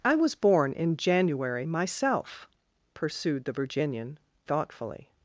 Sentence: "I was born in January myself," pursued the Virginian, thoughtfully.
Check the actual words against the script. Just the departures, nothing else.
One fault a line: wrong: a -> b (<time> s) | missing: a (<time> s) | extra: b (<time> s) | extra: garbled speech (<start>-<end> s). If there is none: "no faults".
no faults